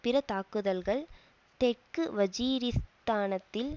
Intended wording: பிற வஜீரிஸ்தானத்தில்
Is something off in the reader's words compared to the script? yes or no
yes